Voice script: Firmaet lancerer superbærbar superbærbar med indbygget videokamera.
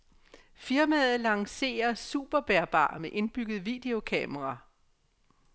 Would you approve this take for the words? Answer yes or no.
no